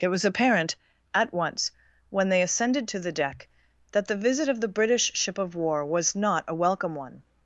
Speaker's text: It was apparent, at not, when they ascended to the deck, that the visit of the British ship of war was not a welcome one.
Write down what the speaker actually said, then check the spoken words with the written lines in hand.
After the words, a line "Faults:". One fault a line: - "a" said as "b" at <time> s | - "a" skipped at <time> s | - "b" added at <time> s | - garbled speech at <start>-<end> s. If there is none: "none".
It was apparent, at once, when they ascended to the deck, that the visit of the British ship of war was not a welcome one.
Faults:
- "not" said as "once" at 1.3 s